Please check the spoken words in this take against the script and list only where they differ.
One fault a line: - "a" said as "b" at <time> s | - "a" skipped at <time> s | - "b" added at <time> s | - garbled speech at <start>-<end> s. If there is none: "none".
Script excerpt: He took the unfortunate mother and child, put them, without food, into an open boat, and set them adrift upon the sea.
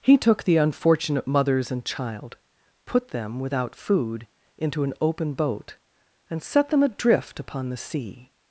- "mother" said as "mothers" at 1.3 s